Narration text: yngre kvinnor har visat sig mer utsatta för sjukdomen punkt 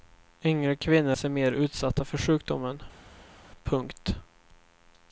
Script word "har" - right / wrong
wrong